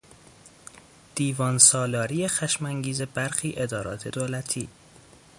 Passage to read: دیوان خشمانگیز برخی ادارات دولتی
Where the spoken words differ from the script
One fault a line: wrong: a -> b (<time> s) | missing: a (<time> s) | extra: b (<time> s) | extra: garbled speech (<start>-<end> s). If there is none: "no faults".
extra: سالاری (1.6 s)